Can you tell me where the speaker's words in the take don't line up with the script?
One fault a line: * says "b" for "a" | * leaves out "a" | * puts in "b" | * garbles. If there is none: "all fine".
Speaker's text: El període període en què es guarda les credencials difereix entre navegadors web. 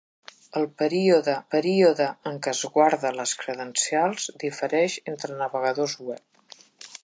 all fine